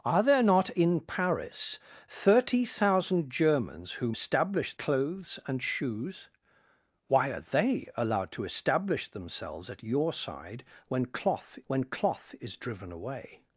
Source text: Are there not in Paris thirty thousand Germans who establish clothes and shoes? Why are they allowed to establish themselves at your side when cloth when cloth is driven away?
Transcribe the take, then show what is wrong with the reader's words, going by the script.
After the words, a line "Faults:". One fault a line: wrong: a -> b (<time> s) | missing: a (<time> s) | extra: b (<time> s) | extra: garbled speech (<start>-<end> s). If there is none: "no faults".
Are there not in Paris thirty thousand Germans who establish clothes and shoes? Why are they allowed to establish themselves at your side when cloth when cloth is driven away?
Faults:
no faults